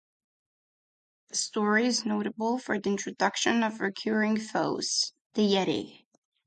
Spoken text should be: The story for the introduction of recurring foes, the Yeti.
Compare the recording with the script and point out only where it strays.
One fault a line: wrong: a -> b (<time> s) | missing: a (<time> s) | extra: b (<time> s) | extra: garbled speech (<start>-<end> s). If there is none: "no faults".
extra: is notable (1.9 s)